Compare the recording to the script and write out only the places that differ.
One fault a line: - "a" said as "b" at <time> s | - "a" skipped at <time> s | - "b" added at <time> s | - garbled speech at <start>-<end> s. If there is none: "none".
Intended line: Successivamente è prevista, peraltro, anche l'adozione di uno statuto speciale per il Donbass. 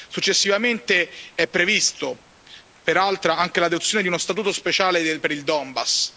none